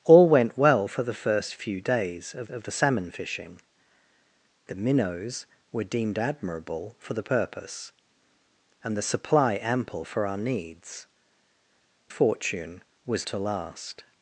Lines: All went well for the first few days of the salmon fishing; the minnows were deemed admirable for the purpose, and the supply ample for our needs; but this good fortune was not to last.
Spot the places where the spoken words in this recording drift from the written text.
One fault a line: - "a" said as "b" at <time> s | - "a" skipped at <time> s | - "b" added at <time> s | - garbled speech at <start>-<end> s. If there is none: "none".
- "of" added at 2.5 s
- "but this good" skipped at 11.1 s
- "not" skipped at 13.3 s